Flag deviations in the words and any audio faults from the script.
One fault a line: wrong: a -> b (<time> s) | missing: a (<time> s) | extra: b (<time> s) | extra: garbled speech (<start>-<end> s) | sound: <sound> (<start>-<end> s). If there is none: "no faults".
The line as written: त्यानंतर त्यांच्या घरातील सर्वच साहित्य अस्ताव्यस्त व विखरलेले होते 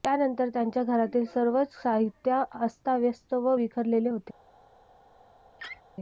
sound: laugh (5.6-5.8 s)